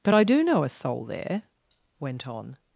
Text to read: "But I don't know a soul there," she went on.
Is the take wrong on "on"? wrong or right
right